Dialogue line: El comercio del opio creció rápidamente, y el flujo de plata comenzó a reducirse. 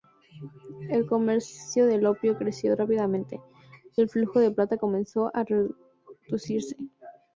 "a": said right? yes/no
yes